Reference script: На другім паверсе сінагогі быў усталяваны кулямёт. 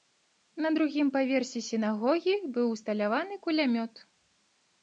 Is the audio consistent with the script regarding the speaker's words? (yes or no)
yes